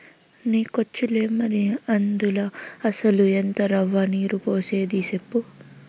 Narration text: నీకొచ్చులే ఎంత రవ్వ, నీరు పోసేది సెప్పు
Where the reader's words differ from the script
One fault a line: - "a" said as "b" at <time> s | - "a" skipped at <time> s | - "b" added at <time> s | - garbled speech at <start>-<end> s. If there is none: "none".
- "మరి అందుల అసల" added at 1.3 s